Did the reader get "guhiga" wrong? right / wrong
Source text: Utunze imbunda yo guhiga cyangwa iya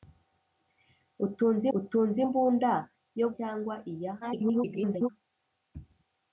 wrong